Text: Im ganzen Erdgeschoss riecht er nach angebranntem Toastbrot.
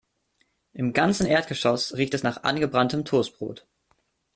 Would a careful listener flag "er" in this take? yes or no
yes